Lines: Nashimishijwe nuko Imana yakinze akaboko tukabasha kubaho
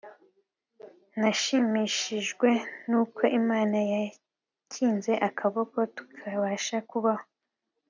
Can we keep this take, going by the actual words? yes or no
yes